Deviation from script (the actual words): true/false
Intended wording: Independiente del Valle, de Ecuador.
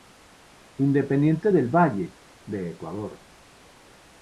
false